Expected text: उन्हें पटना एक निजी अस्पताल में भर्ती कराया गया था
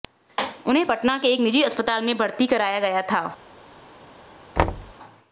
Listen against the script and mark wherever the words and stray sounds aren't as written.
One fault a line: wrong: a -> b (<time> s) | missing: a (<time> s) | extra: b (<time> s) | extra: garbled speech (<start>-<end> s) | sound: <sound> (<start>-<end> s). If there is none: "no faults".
extra: के (1.2 s)
sound: thud (4.6-4.9 s)